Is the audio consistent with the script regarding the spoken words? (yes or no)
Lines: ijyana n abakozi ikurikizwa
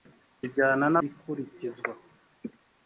no